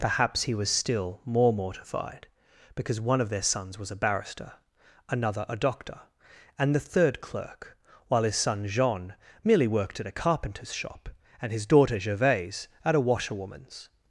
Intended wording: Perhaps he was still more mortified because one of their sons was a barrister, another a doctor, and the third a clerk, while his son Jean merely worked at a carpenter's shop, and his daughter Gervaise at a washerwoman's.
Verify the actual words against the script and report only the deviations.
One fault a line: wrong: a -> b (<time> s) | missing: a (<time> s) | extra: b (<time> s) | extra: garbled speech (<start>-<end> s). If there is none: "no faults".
missing: a (7.2 s)